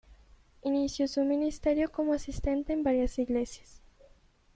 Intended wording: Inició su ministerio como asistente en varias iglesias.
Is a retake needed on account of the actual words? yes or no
no